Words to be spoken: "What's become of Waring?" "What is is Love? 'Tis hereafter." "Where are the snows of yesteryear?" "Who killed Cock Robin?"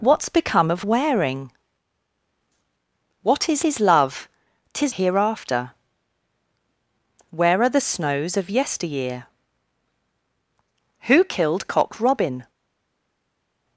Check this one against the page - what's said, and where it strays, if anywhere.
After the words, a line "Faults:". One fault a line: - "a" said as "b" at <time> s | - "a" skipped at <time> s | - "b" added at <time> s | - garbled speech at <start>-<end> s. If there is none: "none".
"What's become of Waring?" "What is is Love? 'Tis hereafter." "Where are the snows of yesteryear?" "Who killed Cock Robin?"
Faults:
none